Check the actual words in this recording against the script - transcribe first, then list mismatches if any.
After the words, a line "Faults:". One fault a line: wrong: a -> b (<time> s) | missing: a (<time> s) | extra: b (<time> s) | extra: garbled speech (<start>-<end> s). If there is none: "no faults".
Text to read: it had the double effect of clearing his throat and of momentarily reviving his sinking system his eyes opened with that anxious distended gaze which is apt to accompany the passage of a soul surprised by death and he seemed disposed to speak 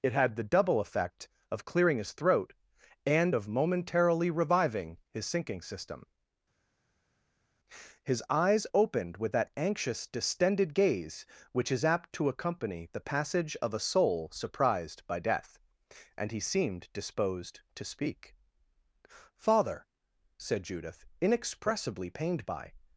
it had the double effect of clearing his throat and of momentarily reviving his sinking system his eyes opened with that anxious distended gaze which is apt to accompany the passage of a soul surprised by death and he seemed disposed to speak father said judith inexpressibly pained by
Faults:
extra: father said judith inexpressibly pained by (19.4 s)